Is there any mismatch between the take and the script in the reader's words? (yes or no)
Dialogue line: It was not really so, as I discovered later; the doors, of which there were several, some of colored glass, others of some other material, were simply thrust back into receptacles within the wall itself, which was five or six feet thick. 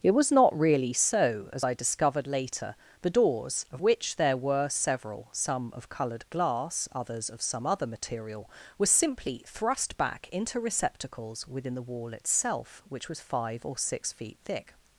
no